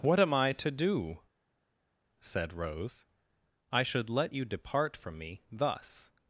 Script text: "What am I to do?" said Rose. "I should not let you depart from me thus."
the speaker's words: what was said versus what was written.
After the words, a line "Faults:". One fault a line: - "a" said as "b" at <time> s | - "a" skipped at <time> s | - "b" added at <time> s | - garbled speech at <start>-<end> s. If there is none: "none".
"What am I to do?" said Rose. "I should let you depart from me thus."
Faults:
- "not" skipped at 4.1 s